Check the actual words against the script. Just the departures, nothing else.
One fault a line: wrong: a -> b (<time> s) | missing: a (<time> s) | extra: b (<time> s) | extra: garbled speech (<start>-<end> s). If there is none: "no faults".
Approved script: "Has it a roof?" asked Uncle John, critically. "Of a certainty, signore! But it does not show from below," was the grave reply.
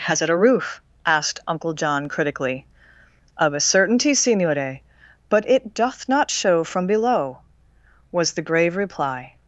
wrong: does -> doth (5.8 s)